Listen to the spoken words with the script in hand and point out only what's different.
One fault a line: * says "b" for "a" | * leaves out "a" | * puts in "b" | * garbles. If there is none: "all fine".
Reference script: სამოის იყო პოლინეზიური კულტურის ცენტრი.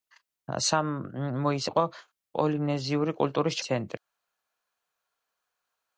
all fine